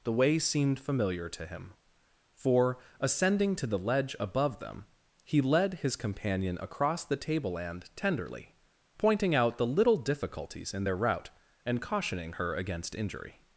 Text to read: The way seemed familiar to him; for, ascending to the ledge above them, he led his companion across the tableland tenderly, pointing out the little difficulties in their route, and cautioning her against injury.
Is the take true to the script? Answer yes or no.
yes